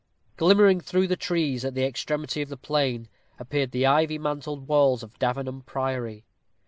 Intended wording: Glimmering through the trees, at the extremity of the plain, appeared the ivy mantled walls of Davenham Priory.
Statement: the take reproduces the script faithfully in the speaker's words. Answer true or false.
true